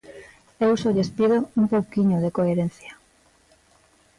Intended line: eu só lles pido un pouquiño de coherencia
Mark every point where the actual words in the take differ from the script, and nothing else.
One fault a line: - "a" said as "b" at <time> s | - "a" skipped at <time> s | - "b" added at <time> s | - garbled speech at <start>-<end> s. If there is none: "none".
none